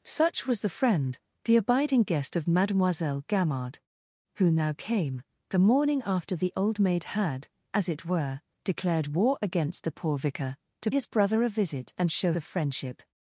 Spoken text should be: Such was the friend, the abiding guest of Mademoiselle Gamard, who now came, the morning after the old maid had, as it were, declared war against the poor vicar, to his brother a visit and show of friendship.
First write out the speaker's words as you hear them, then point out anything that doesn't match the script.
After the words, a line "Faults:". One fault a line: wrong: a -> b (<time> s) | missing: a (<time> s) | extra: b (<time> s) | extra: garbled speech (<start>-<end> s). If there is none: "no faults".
Such was the friend, the abiding guest of Mademoiselle Gamard, who now came, the morning after the old maid had, as it were, declared war against the poor vicar, to his brother a visit and show of friendship.
Faults:
no faults